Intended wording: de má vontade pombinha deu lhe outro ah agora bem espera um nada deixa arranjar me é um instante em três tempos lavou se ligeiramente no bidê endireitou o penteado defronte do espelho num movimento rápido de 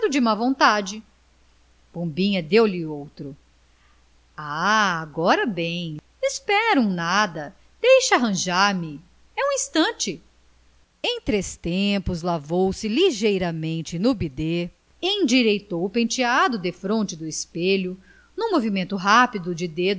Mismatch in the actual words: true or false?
false